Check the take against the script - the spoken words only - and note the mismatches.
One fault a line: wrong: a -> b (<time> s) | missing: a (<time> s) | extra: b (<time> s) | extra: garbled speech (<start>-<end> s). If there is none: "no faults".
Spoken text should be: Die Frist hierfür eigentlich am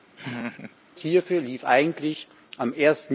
extra: lief (1.4 s)